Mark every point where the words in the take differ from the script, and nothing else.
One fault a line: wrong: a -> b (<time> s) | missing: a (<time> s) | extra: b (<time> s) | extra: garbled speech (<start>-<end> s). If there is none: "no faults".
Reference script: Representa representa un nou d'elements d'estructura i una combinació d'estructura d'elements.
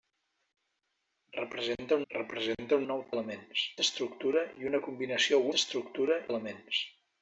no faults